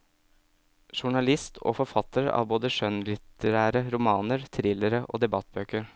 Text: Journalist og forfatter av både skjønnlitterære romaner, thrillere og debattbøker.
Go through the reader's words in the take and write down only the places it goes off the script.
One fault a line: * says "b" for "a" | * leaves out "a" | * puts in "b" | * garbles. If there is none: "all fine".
all fine